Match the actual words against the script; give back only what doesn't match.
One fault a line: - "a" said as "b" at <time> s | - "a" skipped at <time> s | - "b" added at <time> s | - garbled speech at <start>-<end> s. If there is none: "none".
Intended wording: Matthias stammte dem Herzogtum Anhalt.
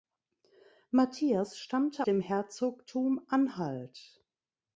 none